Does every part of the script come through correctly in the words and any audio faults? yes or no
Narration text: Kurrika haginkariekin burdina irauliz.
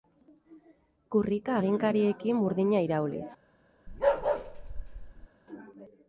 no